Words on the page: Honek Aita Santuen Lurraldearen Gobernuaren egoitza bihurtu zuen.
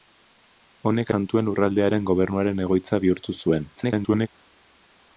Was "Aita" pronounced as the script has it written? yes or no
no